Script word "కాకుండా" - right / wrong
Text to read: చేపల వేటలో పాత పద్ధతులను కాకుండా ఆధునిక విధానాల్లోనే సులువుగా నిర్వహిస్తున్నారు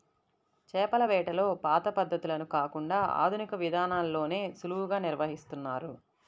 right